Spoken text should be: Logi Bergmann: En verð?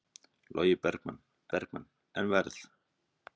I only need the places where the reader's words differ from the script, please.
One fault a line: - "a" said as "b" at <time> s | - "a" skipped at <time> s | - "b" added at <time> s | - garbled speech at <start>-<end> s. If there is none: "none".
- "Bergmann" added at 1.5 s